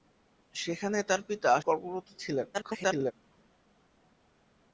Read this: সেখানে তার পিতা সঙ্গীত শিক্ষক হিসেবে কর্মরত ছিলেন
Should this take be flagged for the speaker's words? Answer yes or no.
yes